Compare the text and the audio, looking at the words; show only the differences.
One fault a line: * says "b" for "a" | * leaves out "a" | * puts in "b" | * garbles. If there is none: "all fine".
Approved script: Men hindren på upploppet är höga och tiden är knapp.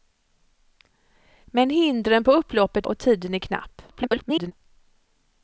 * leaves out "är höga"
* garbles